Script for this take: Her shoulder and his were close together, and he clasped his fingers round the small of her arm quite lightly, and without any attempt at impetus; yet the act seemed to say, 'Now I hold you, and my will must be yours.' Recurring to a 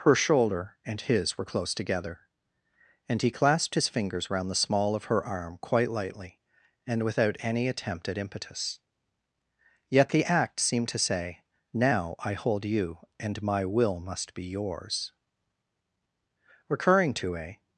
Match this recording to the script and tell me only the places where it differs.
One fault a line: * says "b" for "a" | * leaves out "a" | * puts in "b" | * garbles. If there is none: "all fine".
all fine